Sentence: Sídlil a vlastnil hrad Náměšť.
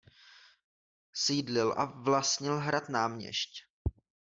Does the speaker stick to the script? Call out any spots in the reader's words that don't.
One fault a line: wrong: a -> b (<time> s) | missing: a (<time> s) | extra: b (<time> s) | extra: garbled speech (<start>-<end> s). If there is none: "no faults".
no faults